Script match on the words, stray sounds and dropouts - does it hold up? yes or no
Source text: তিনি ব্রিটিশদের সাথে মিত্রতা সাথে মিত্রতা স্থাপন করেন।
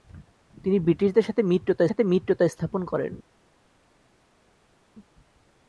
yes